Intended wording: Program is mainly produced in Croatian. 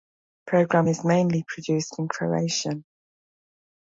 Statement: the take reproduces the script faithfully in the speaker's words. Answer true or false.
true